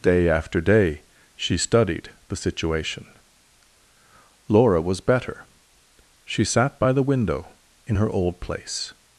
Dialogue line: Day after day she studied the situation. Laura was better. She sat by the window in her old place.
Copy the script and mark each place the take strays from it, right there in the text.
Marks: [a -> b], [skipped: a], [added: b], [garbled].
Day after day she studied the situation. Laura was better. She sat by the window in her old place.